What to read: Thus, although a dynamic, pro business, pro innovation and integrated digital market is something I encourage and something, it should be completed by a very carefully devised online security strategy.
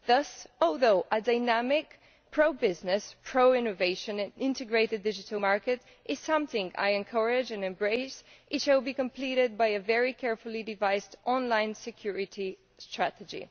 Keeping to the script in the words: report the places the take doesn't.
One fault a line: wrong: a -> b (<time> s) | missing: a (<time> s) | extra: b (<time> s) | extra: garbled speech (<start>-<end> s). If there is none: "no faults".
wrong: something -> embrace (7.6 s)